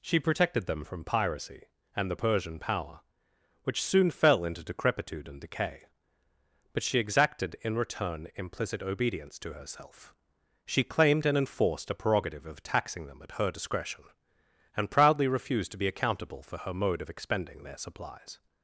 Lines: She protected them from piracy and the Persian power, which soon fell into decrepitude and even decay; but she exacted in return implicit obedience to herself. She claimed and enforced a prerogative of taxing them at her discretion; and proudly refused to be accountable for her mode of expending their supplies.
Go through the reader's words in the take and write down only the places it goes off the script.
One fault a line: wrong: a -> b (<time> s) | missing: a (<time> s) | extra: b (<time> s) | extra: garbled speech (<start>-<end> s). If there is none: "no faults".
missing: even (5.4 s)